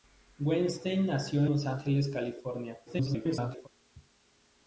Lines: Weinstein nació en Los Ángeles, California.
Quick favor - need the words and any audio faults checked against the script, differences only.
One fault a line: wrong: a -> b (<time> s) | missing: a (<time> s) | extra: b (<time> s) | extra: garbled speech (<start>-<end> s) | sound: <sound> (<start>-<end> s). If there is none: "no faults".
missing: en (1.4 s)
extra: garbled speech (2.9-3.7 s)